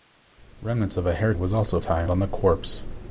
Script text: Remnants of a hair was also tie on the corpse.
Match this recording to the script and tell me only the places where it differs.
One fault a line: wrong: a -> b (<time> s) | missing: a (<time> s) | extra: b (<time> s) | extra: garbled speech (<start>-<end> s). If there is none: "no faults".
no faults